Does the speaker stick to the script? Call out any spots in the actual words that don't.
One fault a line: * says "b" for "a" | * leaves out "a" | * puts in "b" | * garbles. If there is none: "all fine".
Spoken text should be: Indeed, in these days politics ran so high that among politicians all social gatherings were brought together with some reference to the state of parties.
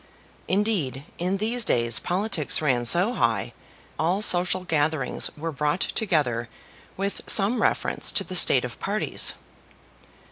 * leaves out "that among politicians"